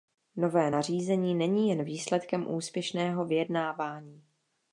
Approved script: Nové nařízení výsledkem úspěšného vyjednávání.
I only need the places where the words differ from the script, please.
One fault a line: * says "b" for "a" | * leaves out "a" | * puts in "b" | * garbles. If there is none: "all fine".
* puts in "není jen"